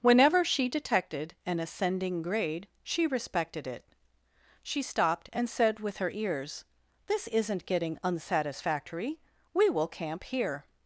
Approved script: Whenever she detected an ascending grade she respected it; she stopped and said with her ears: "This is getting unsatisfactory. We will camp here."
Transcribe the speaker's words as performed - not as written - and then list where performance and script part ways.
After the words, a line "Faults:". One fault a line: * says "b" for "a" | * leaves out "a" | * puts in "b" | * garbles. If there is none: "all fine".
Whenever she detected an ascending grade she respected it; she stopped and said with her ears: "This isn't getting unsatisfactory. We will camp here."
Faults:
* says "isn't" for "is"